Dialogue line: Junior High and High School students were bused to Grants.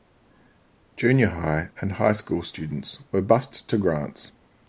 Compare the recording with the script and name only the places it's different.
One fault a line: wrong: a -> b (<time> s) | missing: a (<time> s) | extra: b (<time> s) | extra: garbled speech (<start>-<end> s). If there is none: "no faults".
no faults